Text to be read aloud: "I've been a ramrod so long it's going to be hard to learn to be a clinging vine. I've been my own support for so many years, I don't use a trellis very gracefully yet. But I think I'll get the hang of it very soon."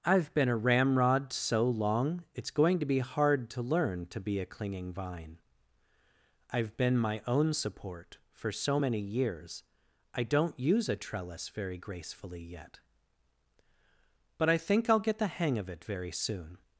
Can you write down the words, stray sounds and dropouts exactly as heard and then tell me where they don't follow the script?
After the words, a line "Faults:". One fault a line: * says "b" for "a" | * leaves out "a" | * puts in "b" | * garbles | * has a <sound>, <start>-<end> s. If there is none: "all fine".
"I've been a ramrod so long it's going to be hard to learn to be a clinging vine. I've been my own support for so many years, I don't use a trellis very gracefully yet. But I think I'll get the hang of it very soon."
Faults:
all fine